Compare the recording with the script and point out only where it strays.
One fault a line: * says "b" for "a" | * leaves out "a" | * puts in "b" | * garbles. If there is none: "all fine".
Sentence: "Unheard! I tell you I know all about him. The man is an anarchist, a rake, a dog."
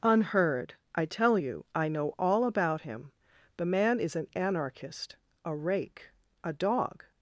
all fine